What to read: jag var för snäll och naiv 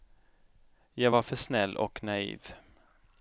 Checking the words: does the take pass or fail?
pass